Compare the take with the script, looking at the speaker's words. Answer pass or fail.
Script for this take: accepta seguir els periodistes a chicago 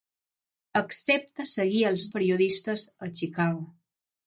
pass